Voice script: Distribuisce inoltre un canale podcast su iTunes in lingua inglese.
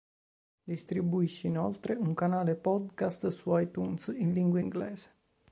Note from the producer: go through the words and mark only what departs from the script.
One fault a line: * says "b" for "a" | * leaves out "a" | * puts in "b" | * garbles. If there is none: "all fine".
all fine